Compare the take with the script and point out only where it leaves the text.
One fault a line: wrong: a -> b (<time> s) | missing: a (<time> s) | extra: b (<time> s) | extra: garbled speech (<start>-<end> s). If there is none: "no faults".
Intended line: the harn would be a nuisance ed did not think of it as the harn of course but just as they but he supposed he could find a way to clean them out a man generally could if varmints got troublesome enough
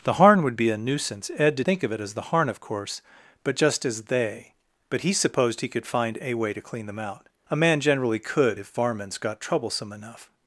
missing: not (1.7 s)